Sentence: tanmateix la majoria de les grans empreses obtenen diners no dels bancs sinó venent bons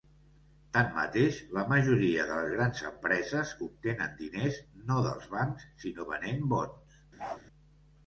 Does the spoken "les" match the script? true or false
true